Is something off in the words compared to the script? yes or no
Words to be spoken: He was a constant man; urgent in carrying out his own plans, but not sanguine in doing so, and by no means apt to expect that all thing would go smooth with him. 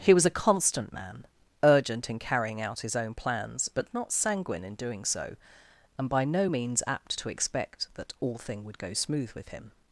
no